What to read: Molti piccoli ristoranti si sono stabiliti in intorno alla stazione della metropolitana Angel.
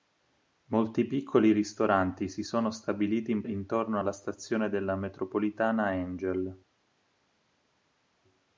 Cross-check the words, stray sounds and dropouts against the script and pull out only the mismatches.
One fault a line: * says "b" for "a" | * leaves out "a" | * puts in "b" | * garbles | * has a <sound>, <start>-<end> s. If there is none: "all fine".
all fine